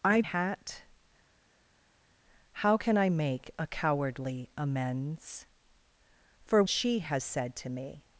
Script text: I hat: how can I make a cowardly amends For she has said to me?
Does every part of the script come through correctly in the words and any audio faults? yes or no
yes